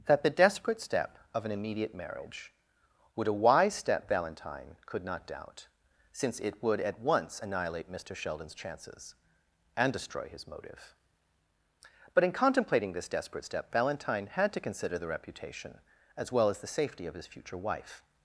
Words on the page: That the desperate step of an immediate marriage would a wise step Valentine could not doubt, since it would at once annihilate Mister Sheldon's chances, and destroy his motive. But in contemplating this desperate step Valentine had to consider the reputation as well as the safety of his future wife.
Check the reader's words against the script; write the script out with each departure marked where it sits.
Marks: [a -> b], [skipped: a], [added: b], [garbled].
That the desperate step of an immediate marriage would a wise step Valentine could not doubt, since it would at once annihilate Mister Sheldon's chances, and destroy his motive. But in contemplating this desperate step Valentine had to consider the reputation as well as the safety of his future wife.